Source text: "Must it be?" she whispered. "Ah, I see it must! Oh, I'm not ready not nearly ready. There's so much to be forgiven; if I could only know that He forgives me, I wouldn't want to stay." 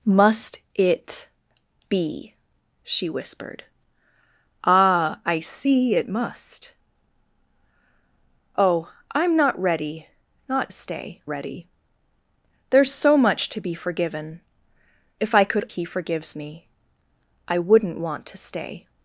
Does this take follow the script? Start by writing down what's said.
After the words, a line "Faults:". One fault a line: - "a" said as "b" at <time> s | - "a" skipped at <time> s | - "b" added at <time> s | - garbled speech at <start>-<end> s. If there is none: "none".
"Must it be?" she whispered. "Ah, I see it must! Oh, I'm not ready not stay ready. There's so much to be forgiven; if I could He forgives me, I wouldn't want to stay."
Faults:
- "nearly" said as "stay" at 10.7 s
- "only know that" skipped at 15.7 s